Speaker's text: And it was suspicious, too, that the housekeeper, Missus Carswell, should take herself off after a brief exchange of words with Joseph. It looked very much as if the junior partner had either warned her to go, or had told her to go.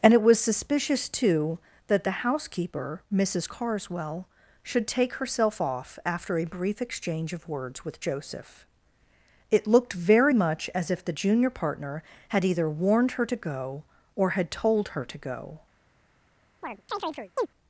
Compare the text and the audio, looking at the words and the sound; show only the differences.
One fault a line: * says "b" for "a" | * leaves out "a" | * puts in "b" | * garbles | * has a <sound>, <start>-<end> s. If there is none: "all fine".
* has a chirp, 16.6-17.5 s